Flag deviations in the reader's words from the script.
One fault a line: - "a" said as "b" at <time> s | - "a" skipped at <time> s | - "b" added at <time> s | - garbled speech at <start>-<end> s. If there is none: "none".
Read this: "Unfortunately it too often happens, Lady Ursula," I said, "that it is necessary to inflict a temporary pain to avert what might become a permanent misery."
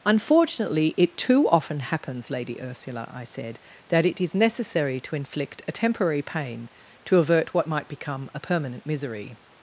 none